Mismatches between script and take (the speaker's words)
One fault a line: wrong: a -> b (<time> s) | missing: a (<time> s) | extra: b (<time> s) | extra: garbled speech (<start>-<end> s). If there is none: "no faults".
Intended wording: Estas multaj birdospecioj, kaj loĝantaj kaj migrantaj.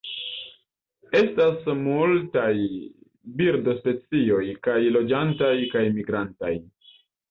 no faults